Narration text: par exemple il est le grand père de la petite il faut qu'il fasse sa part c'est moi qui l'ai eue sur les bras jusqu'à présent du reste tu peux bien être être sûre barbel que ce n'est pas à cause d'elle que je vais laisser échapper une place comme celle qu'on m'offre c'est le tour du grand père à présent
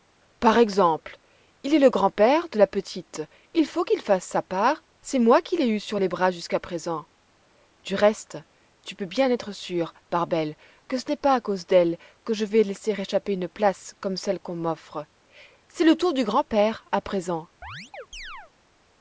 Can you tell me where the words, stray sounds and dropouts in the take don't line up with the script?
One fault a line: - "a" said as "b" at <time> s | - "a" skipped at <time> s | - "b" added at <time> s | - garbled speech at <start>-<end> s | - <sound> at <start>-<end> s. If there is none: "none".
- "être" skipped at 9.5 s
- chirp at 17.6-18.5 s